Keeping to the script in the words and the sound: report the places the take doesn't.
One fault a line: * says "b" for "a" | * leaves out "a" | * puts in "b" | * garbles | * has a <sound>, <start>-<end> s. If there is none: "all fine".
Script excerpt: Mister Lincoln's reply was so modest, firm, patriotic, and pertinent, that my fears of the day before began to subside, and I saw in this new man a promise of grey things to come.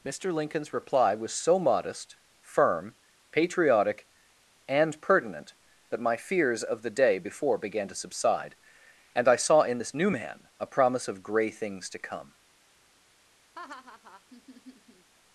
* has a laugh, 13.5-15.1 s